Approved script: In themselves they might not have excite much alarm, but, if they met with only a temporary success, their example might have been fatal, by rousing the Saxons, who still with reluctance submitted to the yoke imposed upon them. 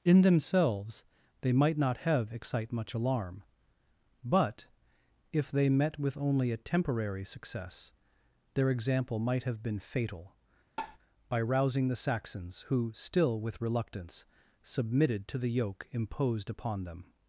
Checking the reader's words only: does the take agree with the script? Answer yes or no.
yes